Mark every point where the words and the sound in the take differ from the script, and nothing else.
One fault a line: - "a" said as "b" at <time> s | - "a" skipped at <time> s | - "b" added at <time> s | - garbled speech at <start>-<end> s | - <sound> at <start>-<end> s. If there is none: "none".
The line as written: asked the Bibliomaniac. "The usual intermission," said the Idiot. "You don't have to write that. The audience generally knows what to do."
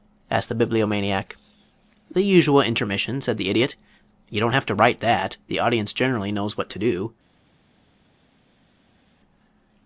none